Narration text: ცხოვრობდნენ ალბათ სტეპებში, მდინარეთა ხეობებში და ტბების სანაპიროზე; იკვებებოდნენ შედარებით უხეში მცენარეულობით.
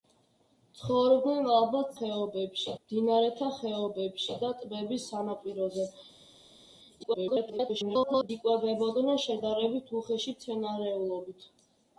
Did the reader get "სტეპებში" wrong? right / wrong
wrong